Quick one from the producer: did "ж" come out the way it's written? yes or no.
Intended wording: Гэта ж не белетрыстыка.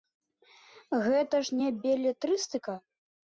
yes